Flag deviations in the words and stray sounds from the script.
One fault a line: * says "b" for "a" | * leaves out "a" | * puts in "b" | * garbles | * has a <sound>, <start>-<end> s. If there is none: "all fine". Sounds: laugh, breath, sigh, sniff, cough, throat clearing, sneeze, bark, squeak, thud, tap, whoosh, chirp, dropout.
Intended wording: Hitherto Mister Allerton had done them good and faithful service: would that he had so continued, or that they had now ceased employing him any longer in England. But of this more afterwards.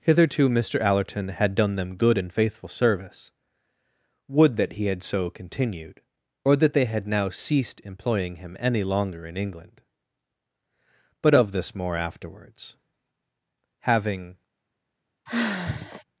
* puts in "Having"
* has a sigh, 15.3-16.0 s